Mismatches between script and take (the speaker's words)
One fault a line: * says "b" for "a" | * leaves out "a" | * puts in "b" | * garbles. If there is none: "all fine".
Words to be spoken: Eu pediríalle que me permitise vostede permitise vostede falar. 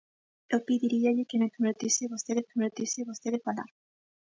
all fine